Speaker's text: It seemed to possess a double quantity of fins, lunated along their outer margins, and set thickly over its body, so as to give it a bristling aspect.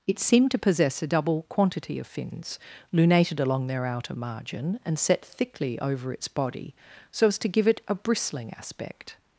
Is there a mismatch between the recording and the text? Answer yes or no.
yes